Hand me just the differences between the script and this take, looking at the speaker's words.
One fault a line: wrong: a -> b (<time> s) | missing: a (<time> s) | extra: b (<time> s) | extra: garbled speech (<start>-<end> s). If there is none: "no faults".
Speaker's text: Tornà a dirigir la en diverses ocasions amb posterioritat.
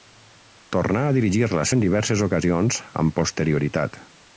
no faults